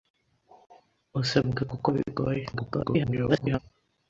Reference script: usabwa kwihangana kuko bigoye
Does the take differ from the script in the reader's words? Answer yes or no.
yes